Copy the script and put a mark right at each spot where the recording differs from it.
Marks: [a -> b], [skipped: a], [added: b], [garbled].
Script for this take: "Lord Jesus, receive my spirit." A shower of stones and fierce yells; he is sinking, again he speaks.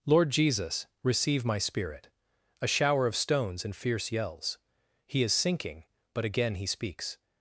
"Lord Jesus, receive my spirit." A shower of stones and fierce yells; he is sinking, [added: but] again he speaks.